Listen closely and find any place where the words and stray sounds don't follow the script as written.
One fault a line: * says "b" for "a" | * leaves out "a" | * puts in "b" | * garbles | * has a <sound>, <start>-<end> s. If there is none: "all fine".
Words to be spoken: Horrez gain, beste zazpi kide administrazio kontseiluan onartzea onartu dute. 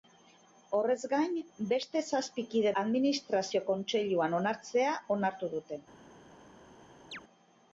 * has a chirp, 7.1-7.2 s